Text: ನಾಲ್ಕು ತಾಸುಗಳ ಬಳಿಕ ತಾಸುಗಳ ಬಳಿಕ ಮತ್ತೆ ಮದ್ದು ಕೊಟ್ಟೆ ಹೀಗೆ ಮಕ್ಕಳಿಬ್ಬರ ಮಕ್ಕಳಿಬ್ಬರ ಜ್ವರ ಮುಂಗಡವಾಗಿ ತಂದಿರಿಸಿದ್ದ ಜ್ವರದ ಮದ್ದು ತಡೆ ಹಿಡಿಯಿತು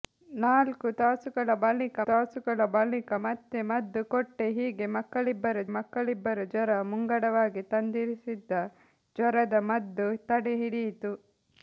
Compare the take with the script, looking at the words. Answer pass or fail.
pass